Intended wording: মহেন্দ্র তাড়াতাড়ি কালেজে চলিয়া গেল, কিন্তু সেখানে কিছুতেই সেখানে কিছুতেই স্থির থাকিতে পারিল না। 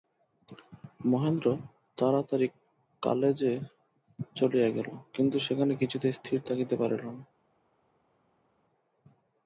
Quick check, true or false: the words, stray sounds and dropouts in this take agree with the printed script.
false